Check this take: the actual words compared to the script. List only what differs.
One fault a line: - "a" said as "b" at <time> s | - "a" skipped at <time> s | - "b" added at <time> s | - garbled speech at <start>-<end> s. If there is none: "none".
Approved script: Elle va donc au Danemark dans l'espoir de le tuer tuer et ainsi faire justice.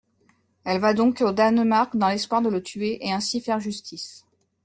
- "tuer" skipped at 3.0 s